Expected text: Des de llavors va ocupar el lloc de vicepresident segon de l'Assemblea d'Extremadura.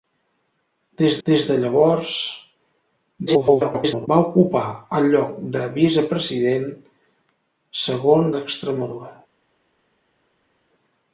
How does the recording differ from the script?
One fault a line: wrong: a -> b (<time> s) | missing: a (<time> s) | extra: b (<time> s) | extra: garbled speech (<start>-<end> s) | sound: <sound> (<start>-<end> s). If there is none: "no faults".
extra: des (1.3 s)
extra: garbled speech (3.3-4.1 s)
missing: de l'Assemblea (8.3 s)